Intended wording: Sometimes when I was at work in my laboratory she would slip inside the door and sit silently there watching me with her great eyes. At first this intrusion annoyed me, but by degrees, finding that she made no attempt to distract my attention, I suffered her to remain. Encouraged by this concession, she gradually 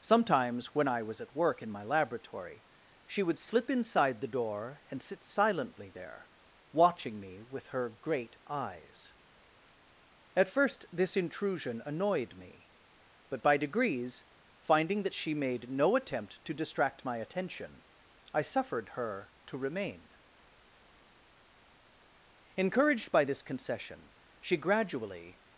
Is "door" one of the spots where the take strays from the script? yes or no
no